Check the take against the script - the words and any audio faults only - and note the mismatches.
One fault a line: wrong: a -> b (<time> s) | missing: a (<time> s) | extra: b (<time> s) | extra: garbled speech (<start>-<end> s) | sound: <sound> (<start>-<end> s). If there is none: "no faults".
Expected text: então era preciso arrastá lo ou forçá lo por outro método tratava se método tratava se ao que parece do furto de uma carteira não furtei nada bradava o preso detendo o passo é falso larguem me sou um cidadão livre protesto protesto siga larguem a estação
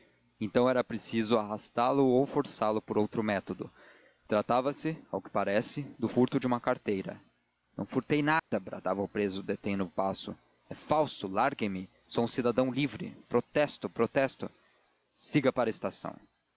missing: método tratava se (5.0 s)
sound: dropout (8.4-8.5 s)
wrong: larguem -> para (15.5 s)